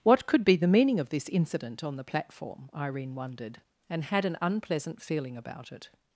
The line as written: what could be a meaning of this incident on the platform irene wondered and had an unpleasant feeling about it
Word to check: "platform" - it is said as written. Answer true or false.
true